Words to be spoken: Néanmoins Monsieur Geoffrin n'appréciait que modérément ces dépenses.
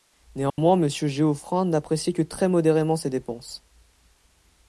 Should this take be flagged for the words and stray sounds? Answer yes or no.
yes